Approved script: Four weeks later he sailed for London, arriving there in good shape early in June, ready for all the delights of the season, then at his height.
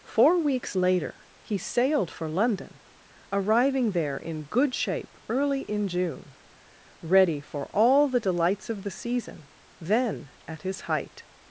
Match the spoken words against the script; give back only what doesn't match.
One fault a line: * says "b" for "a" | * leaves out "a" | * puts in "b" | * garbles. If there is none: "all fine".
all fine